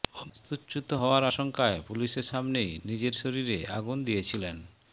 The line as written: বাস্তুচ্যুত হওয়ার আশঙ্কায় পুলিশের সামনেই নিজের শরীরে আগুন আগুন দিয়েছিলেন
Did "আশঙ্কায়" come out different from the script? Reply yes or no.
no